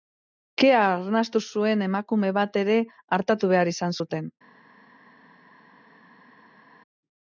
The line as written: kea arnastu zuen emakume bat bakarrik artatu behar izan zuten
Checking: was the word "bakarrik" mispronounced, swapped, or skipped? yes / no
yes